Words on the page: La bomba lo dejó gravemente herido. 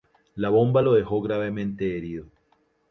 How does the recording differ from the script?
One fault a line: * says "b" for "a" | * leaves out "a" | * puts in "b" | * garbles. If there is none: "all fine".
all fine